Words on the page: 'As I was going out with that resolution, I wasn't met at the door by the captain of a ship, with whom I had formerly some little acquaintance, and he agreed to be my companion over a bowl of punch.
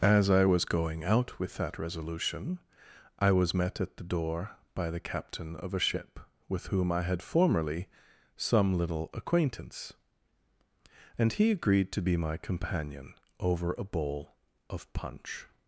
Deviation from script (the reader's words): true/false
true